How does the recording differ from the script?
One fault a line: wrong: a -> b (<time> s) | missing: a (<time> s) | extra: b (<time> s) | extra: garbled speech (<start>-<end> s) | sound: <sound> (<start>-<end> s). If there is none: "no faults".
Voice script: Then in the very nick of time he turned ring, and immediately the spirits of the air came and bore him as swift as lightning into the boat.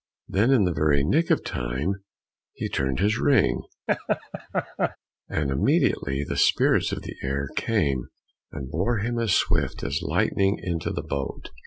extra: his (3.0 s)
sound: laugh (3.9-5.0 s)